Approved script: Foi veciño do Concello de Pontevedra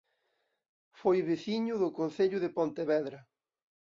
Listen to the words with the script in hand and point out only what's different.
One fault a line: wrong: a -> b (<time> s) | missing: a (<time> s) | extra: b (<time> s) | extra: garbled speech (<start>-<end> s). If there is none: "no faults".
no faults